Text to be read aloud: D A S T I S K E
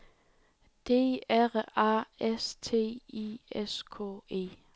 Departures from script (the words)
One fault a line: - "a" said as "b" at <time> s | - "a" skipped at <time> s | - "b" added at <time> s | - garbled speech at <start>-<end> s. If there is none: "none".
- "R" added at 1.3 s